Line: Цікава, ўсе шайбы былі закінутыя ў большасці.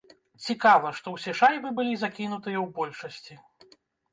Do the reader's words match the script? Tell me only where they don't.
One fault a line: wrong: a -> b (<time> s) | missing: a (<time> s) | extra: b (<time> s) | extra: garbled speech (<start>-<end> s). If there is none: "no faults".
extra: што (1.0 s)